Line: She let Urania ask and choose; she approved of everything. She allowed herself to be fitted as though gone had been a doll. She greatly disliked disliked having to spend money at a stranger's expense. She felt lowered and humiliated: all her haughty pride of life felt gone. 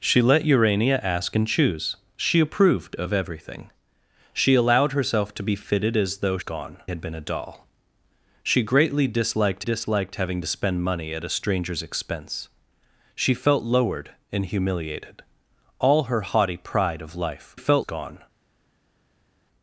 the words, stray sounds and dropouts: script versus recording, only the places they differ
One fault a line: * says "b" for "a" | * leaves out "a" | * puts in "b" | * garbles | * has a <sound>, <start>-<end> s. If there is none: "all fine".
all fine